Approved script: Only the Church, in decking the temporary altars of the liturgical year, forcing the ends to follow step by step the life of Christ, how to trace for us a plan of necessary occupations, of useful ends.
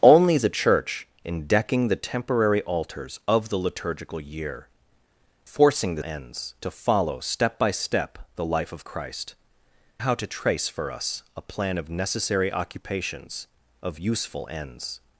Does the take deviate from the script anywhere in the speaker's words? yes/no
no